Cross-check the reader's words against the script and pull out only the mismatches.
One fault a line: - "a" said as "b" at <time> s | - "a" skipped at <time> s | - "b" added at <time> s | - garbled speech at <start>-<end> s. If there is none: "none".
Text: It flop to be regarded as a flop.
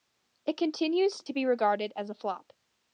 - "flop" said as "continues" at 0.6 s